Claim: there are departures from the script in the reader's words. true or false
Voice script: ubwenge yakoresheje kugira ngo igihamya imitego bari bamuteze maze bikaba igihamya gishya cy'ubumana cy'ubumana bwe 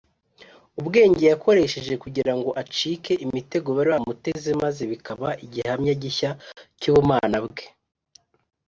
true